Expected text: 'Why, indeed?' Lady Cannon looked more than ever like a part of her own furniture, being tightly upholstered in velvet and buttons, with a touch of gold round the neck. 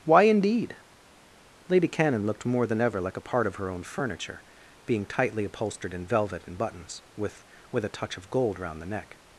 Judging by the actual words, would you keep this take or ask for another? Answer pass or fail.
fail